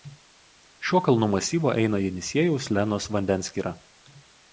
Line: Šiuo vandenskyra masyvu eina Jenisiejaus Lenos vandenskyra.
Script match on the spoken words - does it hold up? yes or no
no